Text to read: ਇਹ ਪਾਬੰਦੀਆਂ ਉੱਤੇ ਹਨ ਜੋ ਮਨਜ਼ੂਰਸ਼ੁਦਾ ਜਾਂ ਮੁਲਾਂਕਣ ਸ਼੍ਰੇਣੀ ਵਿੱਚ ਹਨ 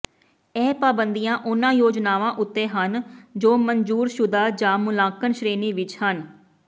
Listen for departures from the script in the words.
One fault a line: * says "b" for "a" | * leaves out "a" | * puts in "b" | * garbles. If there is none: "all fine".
* puts in "ਉਨ੍ਹਾਂ ਯੋਜਨਾਵਾਂ"